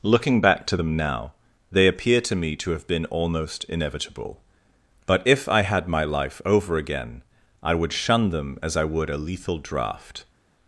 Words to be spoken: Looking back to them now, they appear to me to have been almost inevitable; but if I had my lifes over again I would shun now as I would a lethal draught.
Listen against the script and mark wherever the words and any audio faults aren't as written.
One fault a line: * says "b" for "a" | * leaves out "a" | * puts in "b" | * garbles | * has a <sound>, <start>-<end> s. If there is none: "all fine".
* says "life" for "lifes"
* says "them" for "now"